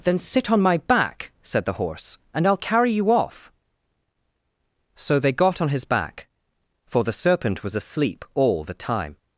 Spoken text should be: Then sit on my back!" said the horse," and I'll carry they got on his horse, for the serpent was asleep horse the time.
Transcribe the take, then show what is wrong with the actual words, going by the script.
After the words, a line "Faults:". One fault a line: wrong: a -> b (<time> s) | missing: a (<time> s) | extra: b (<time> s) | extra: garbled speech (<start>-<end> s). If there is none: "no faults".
Then sit on my back!" said the horse," and I'll carry you off!" So they got on his back, for the serpent was asleep all the time.
Faults:
extra: you off So (2.9 s)
wrong: horse -> back (5.8 s)
wrong: horse -> all (8.3 s)